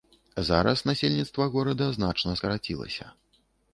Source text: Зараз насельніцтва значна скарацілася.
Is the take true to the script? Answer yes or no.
no